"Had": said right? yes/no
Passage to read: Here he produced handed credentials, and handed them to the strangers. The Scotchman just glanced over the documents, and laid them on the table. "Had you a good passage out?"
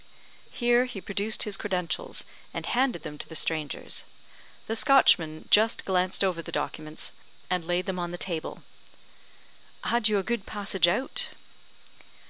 yes